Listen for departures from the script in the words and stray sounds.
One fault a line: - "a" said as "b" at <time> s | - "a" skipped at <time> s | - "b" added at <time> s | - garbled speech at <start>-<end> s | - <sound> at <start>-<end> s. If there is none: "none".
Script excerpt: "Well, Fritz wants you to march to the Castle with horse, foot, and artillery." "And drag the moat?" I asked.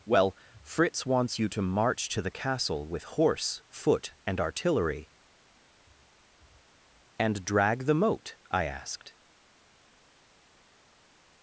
none